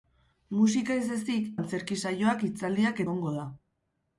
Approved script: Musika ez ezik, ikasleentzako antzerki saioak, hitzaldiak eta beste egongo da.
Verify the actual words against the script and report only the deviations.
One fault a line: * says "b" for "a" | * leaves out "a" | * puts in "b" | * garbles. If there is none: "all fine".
* leaves out "ikasleentzako"
* leaves out "eta beste"